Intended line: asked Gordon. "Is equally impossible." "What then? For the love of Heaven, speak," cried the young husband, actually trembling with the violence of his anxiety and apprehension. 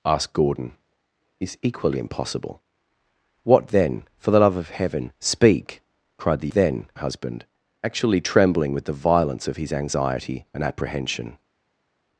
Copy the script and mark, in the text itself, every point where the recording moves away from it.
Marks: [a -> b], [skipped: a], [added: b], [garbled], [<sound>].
asked Gordon. "Is equally impossible." "What then? For the love of Heaven, speak," cried the [young -> then] husband, actually trembling with the violence of his anxiety and apprehension.